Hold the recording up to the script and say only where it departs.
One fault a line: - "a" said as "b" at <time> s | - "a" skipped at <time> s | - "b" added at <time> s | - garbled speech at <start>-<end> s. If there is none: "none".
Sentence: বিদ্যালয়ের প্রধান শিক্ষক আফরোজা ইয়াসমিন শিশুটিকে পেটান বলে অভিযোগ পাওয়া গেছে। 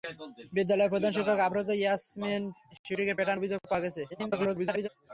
- "বলে" skipped at 3.4 s
- garbled speech at 4.1-4.9 s